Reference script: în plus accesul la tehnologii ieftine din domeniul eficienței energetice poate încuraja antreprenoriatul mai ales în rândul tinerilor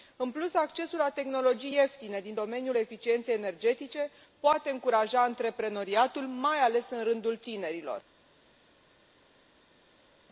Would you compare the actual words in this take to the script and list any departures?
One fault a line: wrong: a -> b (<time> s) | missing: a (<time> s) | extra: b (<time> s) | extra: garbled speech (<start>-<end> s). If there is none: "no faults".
no faults